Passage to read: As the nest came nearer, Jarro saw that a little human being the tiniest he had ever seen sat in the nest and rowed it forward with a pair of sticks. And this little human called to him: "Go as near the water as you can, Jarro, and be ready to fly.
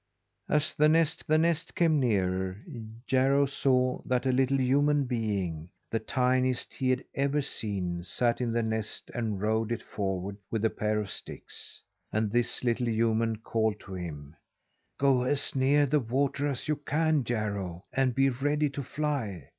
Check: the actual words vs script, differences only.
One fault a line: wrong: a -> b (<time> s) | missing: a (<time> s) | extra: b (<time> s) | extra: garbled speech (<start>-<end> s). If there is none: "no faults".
extra: the nest (1.2 s)